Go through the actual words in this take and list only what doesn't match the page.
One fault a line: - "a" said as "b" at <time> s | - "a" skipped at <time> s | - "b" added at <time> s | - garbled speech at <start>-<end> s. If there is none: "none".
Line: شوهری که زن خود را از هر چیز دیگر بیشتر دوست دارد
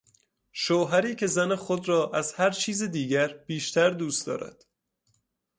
none